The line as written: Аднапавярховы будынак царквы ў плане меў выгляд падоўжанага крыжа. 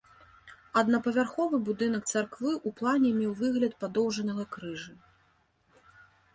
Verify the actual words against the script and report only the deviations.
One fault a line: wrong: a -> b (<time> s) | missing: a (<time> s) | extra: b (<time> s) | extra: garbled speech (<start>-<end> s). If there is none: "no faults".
no faults